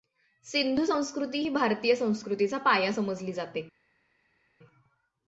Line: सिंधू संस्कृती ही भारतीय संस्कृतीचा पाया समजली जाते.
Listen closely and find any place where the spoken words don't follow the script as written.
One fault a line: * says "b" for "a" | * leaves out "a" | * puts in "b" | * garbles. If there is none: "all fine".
all fine